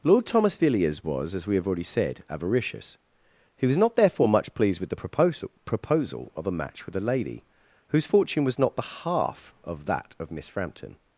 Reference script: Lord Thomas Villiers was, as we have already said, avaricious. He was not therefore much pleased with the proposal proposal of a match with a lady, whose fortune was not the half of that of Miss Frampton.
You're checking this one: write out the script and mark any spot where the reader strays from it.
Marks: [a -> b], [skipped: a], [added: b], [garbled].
Lord Thomas Villiers was, as we have already said, avaricious. He was not therefore much pleased with the proposal proposal of a match with a lady, whose fortune was not the half of that of Miss Frampton.